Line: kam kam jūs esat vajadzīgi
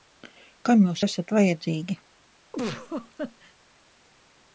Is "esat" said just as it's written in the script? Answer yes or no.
yes